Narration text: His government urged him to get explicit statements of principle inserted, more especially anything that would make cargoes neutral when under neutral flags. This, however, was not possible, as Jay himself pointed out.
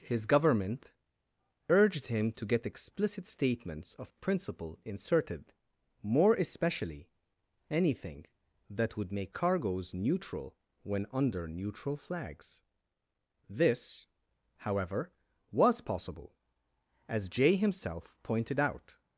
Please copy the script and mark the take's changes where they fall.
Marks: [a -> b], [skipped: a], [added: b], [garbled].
His government urged him to get explicit statements of principle inserted, more especially anything that would make cargoes neutral when under neutral flags. This, however, was [skipped: not] possible, as Jay himself pointed out.